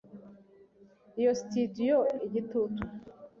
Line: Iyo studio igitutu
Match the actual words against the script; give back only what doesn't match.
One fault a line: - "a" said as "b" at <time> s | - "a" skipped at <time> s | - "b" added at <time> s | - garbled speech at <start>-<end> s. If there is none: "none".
none